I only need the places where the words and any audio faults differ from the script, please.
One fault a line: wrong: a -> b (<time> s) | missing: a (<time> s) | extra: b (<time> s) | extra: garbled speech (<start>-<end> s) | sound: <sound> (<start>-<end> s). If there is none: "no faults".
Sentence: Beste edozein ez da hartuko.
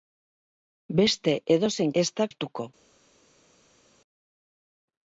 no faults